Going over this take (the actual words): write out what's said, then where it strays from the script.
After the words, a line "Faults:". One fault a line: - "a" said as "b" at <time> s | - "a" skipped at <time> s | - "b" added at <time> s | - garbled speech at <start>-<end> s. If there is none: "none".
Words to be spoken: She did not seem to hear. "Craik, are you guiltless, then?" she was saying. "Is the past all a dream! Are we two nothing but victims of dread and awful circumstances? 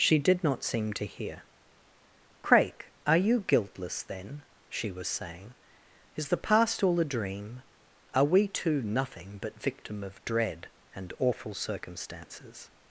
She did not seem to hear. "Craik, are you guiltless, then?" she was saying. "Is the past all a dream! Are we two nothing but victim of dread and awful circumstances?
Faults:
- "victims" said as "victim" at 9.6 s